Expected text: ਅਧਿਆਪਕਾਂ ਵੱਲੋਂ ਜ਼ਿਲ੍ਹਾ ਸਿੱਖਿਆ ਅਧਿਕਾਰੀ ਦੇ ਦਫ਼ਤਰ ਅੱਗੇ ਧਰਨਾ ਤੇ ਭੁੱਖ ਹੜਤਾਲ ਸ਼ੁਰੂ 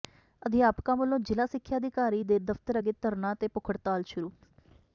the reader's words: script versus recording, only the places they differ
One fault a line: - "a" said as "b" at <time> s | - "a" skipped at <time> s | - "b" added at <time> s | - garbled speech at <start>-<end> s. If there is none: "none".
none